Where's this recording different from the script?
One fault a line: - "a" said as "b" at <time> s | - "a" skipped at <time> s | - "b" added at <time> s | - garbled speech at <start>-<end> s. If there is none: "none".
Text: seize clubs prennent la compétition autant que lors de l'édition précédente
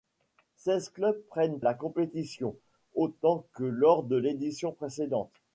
none